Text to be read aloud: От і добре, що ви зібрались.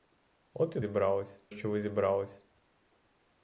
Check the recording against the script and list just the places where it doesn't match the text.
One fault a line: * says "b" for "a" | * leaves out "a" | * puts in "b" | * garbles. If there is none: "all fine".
* says "зібрались" for "добре"